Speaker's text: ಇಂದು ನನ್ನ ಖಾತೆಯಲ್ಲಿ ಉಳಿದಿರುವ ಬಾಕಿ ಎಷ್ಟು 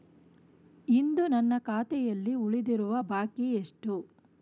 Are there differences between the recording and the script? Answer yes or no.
no